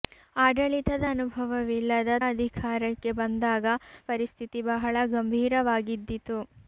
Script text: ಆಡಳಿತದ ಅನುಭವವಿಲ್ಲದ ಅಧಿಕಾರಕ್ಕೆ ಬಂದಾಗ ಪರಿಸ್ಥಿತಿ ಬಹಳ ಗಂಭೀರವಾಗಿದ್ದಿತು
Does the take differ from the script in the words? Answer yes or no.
no